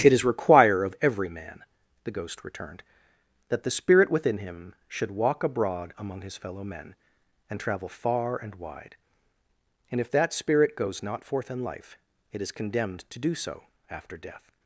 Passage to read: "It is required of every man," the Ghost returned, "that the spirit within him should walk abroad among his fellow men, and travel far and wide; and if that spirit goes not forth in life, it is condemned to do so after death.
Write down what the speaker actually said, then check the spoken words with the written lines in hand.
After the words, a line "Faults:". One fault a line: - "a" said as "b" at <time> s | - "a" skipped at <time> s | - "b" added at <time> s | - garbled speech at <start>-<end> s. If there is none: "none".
"It is require of every man," the Ghost returned, "that the spirit within him should walk abroad among his fellow men, and travel far and wide; and if that spirit goes not forth in life, it is condemned to do so after death.
Faults:
- "required" said as "require" at 0.2 s